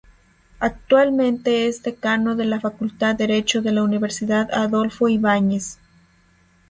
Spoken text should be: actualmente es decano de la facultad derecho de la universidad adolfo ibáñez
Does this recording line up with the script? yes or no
yes